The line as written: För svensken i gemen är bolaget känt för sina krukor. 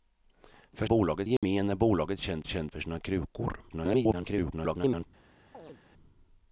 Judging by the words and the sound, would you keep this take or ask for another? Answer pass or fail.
fail